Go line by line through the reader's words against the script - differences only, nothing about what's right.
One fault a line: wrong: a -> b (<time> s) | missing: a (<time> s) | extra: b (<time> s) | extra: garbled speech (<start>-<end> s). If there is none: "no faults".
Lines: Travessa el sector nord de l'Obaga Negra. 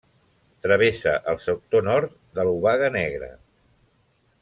no faults